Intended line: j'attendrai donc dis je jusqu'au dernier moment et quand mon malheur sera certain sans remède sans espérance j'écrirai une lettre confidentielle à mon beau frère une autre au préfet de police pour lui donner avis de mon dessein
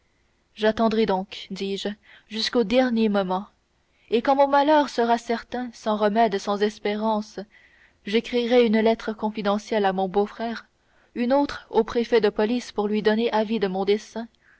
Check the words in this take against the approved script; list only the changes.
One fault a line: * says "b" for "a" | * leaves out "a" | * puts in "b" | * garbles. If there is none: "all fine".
all fine